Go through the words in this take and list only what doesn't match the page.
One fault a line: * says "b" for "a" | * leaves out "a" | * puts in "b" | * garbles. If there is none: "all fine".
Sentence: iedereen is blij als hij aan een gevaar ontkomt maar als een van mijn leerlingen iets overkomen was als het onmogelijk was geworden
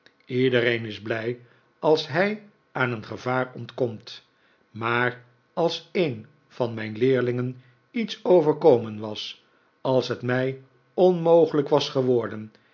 * puts in "mij"